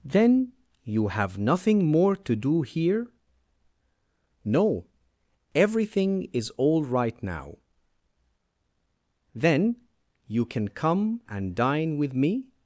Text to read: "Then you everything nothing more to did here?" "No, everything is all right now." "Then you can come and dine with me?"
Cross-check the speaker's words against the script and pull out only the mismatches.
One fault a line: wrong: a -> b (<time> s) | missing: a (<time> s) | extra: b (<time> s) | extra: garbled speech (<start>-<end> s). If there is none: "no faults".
wrong: everything -> have (1.1 s)
wrong: did -> do (2.4 s)